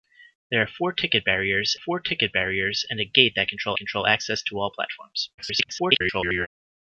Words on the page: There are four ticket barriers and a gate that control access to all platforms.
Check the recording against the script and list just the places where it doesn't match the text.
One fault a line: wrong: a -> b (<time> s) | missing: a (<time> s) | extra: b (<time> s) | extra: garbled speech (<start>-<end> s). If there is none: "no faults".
extra: four ticket barriers (1.7 s)
extra: control (3.8 s)
extra: garbled speech (5.4-6.5 s)